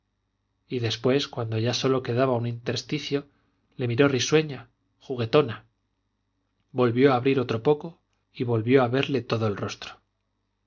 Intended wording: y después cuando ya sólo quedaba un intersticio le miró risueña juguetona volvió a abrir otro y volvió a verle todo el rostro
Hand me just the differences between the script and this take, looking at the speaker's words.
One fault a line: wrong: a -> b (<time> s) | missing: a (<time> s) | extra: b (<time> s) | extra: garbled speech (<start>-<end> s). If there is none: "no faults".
extra: poco (7.6 s)